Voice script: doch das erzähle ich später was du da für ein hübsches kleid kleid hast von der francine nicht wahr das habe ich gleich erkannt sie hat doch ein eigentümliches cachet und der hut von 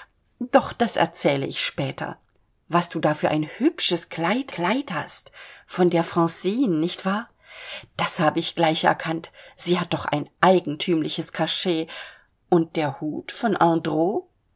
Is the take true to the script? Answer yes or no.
yes